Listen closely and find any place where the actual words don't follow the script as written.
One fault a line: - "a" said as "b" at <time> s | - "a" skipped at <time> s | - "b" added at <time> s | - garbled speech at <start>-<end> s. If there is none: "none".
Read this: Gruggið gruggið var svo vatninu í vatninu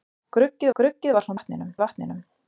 none